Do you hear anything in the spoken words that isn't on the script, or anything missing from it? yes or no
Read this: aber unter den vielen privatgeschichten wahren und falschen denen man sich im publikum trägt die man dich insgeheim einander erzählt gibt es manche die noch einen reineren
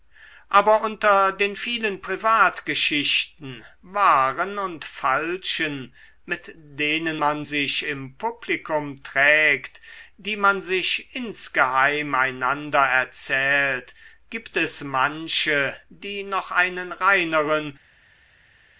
yes